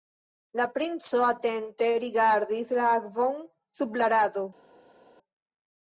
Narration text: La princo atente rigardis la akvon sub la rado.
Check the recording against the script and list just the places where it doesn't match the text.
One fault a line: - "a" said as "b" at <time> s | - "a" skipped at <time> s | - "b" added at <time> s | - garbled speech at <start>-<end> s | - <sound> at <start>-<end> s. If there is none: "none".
none